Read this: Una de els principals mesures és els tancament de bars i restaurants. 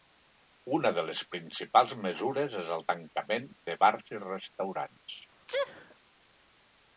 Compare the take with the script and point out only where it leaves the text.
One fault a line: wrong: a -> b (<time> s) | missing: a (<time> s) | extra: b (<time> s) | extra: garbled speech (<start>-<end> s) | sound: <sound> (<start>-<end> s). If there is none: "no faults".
wrong: els -> les (1.1 s)
wrong: els -> el (2.8 s)
sound: sneeze (5.5-6.0 s)